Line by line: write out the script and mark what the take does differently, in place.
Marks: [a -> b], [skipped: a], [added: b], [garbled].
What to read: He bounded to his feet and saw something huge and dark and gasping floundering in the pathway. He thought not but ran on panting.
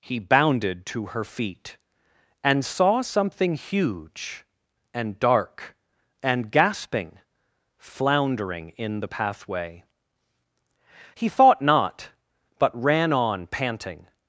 He bounded to [his -> her] feet and saw something huge and dark and gasping floundering in the pathway. He thought not but ran on panting.